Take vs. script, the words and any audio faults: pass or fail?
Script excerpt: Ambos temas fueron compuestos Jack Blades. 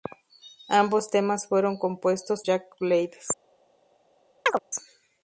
fail